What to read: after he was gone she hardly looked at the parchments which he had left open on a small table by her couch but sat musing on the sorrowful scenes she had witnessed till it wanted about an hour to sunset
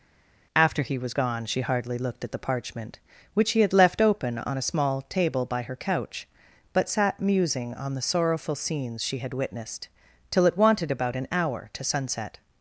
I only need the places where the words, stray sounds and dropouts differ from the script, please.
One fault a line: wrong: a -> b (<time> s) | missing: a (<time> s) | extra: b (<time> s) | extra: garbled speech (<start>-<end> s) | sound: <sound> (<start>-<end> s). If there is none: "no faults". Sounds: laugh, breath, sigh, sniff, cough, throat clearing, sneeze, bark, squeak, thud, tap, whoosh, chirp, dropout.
wrong: parchments -> parchment (2.4 s)